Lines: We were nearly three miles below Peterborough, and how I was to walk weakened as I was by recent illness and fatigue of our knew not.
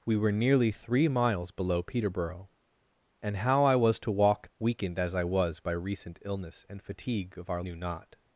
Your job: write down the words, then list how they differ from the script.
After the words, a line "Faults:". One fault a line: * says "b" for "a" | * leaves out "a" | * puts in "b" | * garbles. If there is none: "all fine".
We were nearly three miles below Peterborough, and how I was to walk weakened as I was by recent illness and fatigue of our knew not.
Faults:
all fine